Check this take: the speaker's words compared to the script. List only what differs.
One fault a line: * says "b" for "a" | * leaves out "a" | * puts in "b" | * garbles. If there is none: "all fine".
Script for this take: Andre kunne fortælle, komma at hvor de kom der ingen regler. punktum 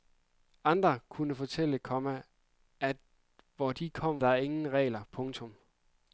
all fine